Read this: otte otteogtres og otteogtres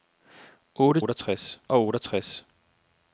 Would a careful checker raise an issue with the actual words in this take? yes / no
no